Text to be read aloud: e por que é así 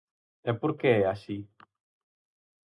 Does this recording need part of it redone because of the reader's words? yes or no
no